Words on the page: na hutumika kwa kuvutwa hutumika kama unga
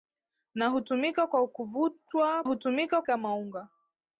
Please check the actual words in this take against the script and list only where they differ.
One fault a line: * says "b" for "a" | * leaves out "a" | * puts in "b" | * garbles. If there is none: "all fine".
all fine